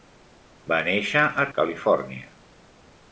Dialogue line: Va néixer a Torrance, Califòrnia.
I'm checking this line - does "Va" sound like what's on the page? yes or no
yes